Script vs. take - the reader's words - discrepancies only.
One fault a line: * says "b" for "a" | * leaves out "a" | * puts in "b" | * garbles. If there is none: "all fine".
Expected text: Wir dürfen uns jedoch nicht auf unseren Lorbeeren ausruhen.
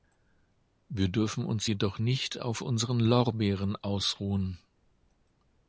all fine